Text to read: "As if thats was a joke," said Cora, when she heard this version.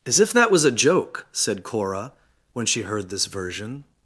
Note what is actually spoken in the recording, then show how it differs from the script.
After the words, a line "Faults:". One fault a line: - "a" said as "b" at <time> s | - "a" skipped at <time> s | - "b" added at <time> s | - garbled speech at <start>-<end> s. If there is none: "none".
"As if that was a joke," said Cora, when she heard this version.
Faults:
- "thats" said as "that" at 0.3 s